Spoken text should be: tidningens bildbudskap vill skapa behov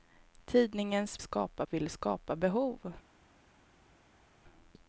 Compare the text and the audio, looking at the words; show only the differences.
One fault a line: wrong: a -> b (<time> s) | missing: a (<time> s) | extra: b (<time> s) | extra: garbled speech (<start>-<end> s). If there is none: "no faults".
wrong: bildbudskap -> skapa (1.2 s)